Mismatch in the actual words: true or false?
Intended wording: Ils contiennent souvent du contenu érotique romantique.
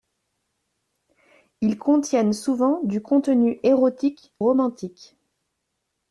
false